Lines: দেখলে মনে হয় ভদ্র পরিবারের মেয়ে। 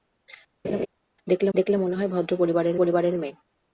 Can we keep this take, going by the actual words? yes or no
no